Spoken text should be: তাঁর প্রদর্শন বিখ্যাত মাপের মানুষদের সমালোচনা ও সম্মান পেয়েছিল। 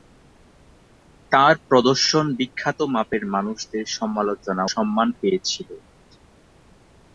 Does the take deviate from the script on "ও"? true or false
true